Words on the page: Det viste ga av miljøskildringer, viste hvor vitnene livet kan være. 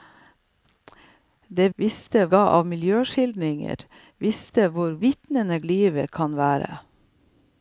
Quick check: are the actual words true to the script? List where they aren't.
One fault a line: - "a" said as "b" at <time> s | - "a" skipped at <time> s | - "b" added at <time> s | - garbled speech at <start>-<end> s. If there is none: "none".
none